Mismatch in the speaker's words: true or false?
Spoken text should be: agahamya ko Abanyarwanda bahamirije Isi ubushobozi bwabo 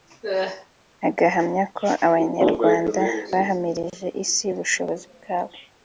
false